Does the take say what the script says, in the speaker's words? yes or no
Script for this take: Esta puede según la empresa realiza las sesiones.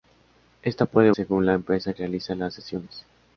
yes